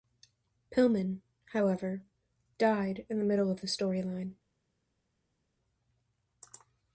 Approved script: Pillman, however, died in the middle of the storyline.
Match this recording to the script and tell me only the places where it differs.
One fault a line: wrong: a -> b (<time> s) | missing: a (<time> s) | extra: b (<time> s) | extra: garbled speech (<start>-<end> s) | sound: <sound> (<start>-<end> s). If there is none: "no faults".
no faults